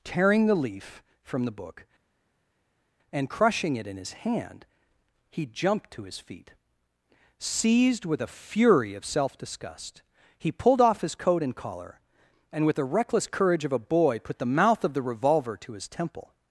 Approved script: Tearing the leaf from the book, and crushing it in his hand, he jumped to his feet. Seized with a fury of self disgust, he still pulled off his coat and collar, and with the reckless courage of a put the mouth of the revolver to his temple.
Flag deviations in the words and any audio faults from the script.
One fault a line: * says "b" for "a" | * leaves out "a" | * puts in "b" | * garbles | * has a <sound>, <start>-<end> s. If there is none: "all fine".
* leaves out "still"
* puts in "boy"